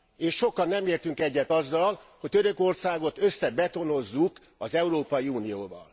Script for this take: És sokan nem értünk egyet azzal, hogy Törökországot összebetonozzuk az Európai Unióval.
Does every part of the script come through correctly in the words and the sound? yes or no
yes